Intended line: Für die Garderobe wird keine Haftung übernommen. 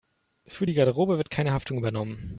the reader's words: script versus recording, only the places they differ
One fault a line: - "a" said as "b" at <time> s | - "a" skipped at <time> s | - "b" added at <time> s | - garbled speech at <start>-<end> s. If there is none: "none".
none